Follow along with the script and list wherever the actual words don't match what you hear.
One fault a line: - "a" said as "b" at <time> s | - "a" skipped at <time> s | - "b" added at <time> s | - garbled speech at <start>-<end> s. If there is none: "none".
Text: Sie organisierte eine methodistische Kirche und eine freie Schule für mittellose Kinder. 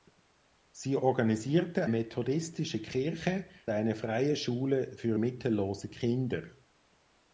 - "eine" skipped at 1.9 s
- "und" skipped at 3.5 s